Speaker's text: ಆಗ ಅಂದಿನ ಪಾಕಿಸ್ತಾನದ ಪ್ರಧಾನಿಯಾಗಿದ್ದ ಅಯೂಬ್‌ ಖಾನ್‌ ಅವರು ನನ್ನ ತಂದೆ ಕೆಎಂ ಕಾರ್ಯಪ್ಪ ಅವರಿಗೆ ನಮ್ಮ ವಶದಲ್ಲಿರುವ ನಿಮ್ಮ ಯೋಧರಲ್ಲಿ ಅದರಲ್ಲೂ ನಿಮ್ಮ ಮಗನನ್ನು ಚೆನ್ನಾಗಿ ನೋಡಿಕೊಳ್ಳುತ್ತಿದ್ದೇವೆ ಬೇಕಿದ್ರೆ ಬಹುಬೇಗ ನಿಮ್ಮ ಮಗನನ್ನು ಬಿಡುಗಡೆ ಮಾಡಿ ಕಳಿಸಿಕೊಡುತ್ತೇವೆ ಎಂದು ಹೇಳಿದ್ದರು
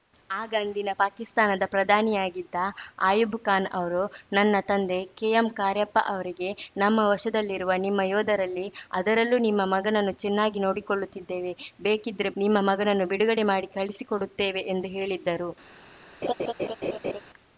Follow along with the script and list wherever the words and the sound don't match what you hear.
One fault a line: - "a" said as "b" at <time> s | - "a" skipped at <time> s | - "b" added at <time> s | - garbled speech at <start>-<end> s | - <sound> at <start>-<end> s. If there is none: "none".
- "ಬಹುಬೇಗ" skipped at 12.3 s
- laugh at 16.2-17.2 s